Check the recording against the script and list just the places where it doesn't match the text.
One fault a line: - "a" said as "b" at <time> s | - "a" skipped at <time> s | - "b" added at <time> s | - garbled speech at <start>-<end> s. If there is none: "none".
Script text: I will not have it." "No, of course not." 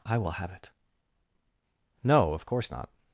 - "not" skipped at 0.3 s